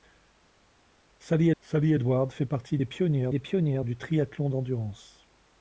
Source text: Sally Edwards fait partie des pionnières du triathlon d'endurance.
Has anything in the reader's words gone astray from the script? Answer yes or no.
yes